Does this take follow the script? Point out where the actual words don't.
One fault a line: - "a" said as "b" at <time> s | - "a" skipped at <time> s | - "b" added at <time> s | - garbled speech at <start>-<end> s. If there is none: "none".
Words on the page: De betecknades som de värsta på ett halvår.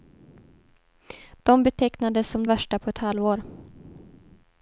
- "de" skipped at 2.5 s